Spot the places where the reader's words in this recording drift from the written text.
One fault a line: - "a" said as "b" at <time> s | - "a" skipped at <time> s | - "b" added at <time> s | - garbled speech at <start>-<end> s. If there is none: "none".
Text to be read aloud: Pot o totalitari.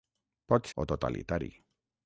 none